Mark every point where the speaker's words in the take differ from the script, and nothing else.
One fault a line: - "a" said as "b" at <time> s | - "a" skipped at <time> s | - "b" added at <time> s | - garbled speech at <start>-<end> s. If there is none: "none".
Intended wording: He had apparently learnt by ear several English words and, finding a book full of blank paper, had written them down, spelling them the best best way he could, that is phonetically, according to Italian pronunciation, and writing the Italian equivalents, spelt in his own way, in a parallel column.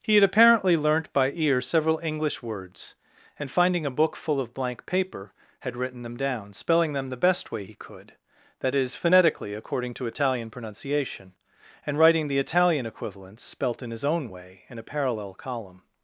- "best" skipped at 7.5 s